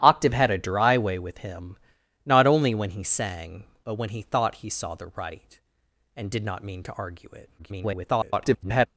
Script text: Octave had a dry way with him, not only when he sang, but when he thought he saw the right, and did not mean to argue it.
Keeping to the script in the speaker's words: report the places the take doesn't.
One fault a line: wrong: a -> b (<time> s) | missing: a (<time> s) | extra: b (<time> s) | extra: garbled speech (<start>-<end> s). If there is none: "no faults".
extra: garbled speech (7.6-8.9 s)